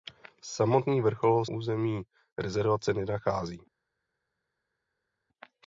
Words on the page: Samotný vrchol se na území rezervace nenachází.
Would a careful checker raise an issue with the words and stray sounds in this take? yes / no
yes